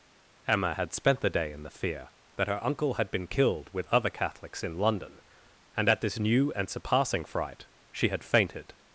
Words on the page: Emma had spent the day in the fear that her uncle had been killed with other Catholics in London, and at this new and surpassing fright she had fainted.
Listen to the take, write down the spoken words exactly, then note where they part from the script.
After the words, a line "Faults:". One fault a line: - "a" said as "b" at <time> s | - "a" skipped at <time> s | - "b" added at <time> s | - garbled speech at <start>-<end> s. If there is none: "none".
Emma had spent the day in the fear that her uncle had been killed with other Catholics in London, and at this new and surpassing fright she had fainted.
Faults:
none